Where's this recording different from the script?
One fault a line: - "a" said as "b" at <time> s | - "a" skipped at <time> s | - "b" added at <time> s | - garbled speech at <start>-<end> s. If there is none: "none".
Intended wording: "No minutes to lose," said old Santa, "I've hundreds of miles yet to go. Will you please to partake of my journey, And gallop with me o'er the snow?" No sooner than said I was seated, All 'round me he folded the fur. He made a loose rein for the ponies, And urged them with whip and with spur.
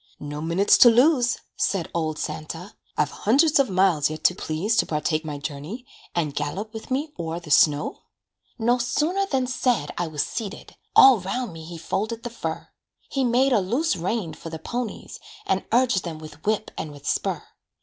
- "go Will you" skipped at 4.3 s
- "of" skipped at 5.3 s